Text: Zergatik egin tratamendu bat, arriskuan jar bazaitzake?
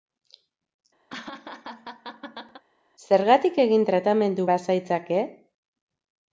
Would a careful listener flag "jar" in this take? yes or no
yes